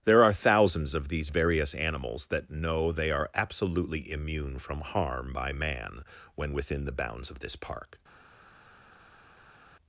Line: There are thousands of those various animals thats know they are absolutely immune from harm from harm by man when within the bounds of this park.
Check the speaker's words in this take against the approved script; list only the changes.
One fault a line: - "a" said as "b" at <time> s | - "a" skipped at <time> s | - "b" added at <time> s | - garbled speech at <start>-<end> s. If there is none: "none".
- "those" said as "these" at 1.1 s
- "thats" said as "that" at 2.3 s
- "from harm" skipped at 5.3 s